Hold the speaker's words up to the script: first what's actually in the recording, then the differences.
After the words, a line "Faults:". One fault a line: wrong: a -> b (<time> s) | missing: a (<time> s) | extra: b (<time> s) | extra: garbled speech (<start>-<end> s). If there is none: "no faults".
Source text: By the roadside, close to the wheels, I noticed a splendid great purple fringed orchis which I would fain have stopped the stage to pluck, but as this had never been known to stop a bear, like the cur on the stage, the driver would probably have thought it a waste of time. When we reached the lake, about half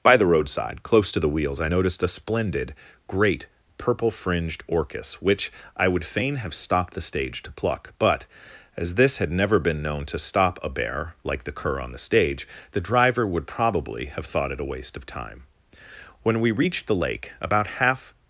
By the roadside, close to the wheels, I noticed a splendid great purple fringed orchis which I would fain have stopped the stage to pluck, but as this had never been known to stop a bear, like the cur on the stage, the driver would probably have thought it a waste of time. When we reached the lake, about half
Faults:
no faults